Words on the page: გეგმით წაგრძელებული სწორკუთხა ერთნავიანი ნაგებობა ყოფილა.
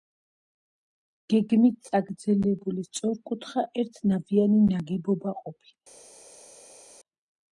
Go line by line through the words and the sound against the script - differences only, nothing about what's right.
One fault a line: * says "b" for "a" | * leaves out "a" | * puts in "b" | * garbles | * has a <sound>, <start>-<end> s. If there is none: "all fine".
all fine